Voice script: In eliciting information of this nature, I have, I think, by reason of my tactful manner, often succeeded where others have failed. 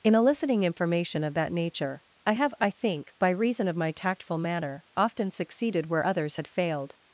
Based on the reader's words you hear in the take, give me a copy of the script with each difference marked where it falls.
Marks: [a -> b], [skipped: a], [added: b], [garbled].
In eliciting information of [this -> that] nature, I have, I think, by reason of my tactful manner, often succeeded where others [have -> had] failed.